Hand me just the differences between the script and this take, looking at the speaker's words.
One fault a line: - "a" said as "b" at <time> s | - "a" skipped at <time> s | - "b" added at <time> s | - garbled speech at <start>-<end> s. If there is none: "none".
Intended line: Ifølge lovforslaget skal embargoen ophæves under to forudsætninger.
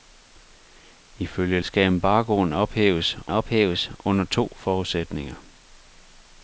- "lovforslaget" skipped at 1.6 s
- "ophæves" added at 3.3 s